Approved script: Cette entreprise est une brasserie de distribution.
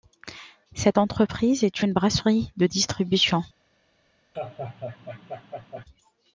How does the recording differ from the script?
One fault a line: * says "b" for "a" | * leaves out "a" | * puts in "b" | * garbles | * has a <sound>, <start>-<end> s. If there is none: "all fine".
* has a laugh, 4.3-5.8 s